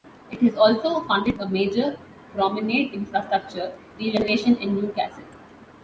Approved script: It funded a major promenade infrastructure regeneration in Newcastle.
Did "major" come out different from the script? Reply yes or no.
no